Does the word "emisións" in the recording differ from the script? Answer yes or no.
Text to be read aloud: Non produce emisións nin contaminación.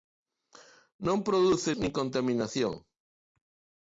yes